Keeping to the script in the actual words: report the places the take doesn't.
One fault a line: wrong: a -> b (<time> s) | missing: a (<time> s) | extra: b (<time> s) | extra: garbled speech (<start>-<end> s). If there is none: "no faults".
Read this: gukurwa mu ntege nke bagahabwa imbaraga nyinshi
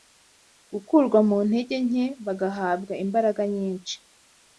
no faults